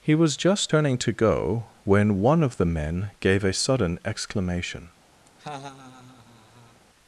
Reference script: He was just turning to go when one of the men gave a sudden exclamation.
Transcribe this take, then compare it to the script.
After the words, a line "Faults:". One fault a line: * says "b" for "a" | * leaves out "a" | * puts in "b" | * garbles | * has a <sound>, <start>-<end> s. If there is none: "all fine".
He was just turning to go when one of the men gave a sudden exclamation.
Faults:
* has a laugh, 5.3-6.8 s